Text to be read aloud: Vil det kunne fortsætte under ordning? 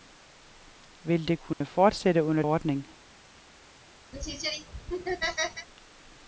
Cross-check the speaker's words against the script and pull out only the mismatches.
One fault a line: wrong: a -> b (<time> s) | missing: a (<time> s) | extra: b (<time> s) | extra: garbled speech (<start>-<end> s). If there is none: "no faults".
no faults